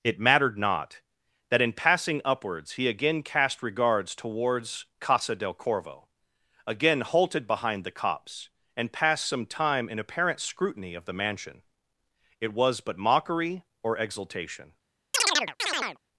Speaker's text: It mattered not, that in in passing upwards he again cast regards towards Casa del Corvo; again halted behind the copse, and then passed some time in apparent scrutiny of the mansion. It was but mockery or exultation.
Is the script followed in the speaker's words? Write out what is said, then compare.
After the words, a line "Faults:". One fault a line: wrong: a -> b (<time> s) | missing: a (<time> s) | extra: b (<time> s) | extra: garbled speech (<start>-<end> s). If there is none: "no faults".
It mattered not, that in passing upwards he again cast regards towards Casa del Corvo; again halted behind the copse, and passed some time in apparent scrutiny of the mansion. It was but mockery or exultation.
Faults:
missing: in (1.7 s)
missing: then (8.9 s)